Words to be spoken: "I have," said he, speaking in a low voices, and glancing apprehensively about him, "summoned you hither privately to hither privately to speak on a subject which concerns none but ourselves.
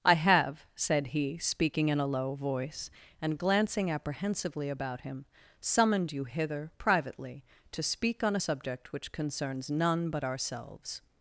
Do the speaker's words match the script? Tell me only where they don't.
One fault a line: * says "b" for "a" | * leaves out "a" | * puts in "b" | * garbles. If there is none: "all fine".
* says "voice" for "voices"
* leaves out "hither privately to"